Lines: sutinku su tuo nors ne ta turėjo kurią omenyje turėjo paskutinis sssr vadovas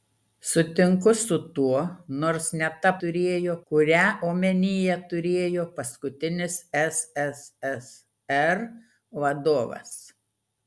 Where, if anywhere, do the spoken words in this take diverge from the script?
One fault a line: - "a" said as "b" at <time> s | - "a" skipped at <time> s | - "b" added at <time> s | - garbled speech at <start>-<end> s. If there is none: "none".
none